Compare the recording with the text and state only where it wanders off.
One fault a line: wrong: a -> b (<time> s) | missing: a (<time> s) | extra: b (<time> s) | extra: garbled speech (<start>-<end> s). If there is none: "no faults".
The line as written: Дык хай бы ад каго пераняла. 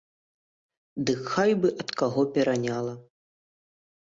no faults